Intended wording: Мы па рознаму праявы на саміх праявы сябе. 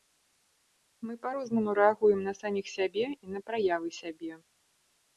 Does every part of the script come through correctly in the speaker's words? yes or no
no